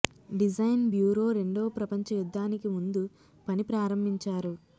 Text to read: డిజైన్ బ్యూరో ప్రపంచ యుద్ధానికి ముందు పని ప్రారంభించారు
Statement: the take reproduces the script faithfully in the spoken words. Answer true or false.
false